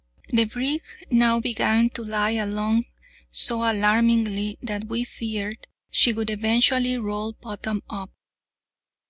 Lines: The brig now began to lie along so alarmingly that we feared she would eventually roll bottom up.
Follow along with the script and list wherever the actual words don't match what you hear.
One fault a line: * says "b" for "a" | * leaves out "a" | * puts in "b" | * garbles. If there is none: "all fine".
all fine